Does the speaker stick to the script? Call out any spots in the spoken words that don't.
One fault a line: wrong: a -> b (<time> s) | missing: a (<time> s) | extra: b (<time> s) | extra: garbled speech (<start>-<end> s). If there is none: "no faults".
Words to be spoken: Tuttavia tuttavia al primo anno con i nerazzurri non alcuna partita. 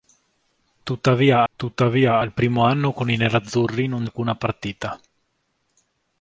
no faults